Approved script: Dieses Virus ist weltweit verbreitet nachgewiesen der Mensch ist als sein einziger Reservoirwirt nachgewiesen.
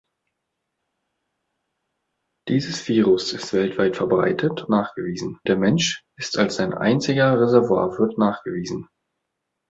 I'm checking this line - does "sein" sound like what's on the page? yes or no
yes